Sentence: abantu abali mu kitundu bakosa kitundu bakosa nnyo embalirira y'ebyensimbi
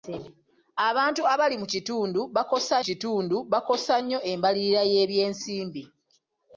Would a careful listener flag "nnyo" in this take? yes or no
no